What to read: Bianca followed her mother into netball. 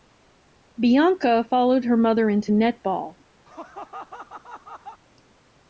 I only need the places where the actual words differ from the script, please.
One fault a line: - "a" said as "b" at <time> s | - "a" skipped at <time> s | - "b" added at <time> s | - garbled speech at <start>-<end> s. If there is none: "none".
none